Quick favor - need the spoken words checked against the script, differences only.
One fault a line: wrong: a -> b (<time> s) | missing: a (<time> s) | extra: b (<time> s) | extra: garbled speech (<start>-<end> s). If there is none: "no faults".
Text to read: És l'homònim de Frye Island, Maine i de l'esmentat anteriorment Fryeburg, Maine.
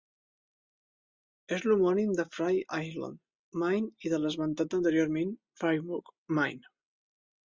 no faults